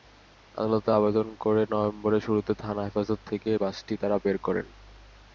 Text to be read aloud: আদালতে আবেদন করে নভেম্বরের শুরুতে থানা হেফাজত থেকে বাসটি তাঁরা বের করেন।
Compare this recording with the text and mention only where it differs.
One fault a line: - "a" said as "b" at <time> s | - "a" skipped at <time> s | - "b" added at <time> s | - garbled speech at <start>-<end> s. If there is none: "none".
none